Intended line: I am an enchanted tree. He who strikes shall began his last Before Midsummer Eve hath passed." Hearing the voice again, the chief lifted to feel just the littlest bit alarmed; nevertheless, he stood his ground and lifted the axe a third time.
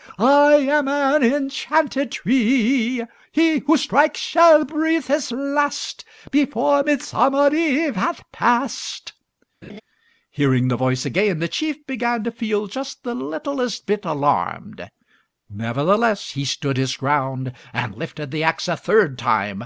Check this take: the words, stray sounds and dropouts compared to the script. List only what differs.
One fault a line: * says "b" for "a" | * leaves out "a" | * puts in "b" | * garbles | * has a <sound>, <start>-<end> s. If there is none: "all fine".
* says "breathe" for "began"
* has a laugh, 9.6-9.8 s
* says "began" for "lifted"